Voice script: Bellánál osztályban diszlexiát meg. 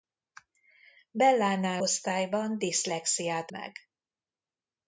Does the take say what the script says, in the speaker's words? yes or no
yes